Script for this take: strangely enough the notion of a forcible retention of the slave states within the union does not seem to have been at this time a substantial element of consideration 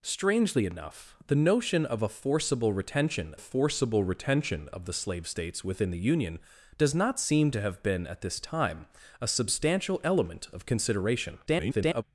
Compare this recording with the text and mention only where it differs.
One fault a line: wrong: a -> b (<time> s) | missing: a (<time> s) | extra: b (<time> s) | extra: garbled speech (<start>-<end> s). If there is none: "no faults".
extra: forcible retention (3.4 s)
extra: garbled speech (11.5-12.0 s)